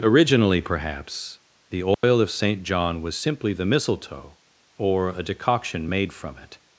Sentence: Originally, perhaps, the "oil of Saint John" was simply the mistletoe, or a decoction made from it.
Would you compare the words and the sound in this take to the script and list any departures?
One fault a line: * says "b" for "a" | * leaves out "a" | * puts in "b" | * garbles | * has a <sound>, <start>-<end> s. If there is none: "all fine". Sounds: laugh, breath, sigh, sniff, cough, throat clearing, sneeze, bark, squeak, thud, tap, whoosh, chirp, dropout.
* has a dropout, 1.9-2.0 s